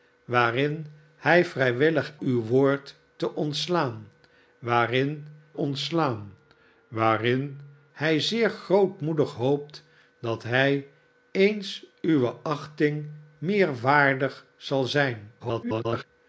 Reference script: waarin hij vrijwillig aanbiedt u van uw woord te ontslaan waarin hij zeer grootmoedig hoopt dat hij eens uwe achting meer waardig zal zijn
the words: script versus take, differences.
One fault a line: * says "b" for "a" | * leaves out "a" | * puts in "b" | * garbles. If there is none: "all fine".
* leaves out "aanbiedt u van"
* puts in "ontslaan waarin"
* garbles